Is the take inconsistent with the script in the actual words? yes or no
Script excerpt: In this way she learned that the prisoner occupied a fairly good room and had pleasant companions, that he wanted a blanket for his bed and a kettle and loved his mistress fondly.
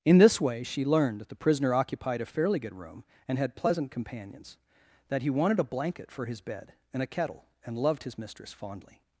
no